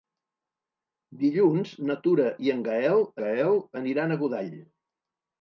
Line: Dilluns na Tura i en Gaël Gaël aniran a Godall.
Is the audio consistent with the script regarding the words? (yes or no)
yes